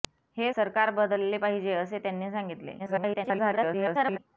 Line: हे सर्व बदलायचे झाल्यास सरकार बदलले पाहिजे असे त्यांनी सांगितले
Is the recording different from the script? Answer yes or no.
yes